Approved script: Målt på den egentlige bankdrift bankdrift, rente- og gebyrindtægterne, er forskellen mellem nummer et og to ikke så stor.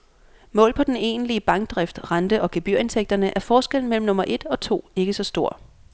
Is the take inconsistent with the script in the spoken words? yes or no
yes